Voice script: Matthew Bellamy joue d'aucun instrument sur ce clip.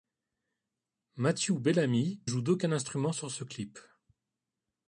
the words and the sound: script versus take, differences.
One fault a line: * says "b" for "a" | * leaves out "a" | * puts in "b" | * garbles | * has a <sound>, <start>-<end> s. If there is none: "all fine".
all fine